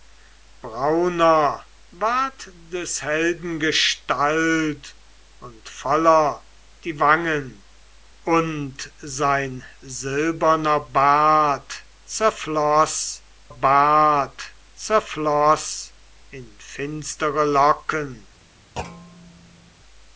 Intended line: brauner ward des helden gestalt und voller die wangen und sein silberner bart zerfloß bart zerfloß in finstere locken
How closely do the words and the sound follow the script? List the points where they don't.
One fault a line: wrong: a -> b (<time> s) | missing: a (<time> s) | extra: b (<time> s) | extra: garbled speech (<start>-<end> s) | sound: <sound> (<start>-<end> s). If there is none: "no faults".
sound: thud (18.8-19.7 s)